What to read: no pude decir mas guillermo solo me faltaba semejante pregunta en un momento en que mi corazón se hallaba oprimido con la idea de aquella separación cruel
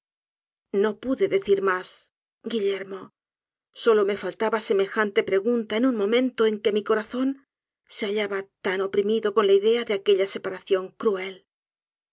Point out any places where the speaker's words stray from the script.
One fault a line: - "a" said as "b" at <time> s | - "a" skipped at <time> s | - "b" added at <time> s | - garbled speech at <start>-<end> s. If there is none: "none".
- "tan" added at 8.7 s